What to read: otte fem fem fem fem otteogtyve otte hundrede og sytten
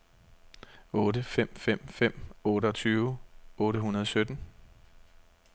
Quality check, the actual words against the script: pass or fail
fail